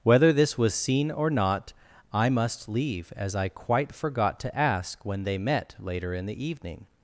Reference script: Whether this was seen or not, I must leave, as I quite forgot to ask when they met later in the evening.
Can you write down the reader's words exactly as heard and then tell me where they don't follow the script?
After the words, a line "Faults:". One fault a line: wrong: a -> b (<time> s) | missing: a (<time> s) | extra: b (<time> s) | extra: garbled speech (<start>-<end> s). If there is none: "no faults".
Whether this was seen or not, I must leave, as I quite forgot to ask when they met later in the evening.
Faults:
no faults